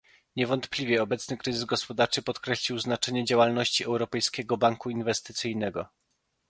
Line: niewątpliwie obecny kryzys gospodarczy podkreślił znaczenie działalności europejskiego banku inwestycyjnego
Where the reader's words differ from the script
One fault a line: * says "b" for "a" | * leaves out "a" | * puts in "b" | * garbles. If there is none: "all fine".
all fine